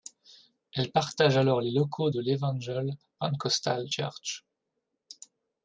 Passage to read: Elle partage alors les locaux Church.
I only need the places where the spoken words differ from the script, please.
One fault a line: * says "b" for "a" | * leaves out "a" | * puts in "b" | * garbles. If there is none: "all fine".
* puts in "de l'Evangel Pentecostal"